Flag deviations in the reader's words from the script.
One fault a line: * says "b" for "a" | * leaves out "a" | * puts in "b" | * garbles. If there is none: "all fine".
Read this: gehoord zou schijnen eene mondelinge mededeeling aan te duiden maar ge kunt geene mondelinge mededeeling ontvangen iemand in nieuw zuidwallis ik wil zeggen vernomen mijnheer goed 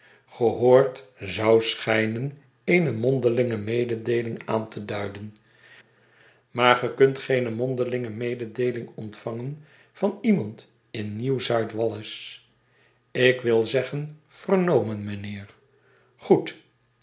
* puts in "van"